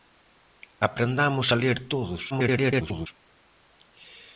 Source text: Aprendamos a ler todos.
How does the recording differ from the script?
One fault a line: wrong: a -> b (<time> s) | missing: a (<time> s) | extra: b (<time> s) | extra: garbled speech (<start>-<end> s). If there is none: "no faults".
extra: garbled speech (2.3-3.1 s)